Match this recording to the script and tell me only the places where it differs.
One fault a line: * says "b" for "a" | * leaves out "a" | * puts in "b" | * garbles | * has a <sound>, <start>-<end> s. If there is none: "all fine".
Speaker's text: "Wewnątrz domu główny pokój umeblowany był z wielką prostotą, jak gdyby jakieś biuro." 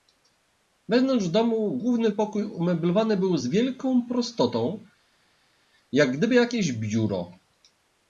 all fine